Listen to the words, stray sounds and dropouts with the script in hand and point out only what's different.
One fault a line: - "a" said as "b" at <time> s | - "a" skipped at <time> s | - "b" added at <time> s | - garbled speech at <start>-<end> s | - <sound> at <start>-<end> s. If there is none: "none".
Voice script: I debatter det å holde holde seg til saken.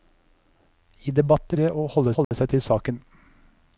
- dropout at 2.2-2.3 s